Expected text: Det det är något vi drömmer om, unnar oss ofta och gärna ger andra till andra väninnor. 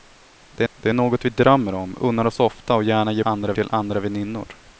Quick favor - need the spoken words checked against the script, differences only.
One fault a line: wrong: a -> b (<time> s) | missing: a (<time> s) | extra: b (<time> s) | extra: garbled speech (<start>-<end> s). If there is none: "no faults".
no faults